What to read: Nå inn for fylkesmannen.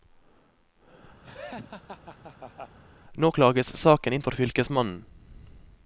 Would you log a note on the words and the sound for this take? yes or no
yes